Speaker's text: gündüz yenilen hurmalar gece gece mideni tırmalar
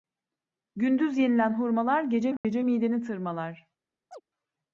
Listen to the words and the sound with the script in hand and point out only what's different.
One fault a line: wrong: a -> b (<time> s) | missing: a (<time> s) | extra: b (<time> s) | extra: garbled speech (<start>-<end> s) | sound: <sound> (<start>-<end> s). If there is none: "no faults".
sound: dropout (2.4-2.4 s)
sound: chirp (4.1-4.2 s)